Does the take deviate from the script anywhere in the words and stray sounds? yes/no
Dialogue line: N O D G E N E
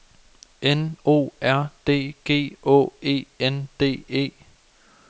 yes